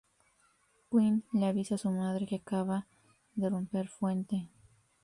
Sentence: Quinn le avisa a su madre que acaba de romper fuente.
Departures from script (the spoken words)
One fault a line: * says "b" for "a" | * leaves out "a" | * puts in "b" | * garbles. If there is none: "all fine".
all fine